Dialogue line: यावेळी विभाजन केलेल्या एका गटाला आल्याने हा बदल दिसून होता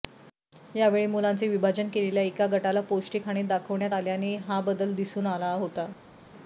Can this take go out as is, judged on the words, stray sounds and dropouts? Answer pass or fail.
fail